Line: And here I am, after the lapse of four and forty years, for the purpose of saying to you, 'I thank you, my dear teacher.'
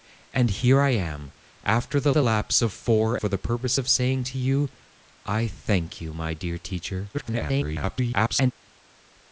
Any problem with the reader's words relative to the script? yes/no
yes